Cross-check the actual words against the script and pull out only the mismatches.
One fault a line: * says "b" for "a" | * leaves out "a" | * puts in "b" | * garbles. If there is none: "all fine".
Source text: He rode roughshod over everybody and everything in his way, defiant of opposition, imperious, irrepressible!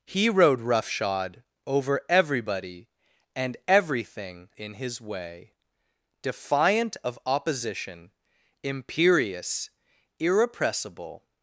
all fine